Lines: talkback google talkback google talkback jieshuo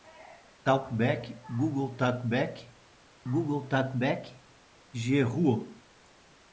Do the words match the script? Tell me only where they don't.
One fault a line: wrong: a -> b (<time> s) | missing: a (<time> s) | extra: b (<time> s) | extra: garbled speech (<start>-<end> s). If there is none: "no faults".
no faults